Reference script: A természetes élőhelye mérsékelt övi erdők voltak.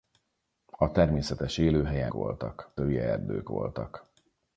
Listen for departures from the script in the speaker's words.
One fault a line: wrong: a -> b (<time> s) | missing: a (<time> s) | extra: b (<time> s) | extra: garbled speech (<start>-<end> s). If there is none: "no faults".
wrong: mérsékelt -> voltak (2.1 s)